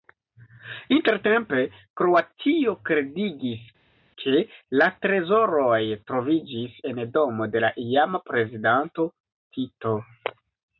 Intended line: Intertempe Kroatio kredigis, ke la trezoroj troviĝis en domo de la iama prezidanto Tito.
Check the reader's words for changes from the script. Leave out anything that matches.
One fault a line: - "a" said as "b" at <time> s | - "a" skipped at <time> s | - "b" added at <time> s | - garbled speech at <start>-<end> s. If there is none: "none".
none